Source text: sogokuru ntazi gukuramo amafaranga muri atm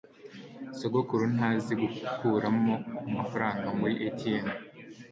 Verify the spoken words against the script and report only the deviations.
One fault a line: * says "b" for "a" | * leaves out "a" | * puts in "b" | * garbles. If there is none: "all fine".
all fine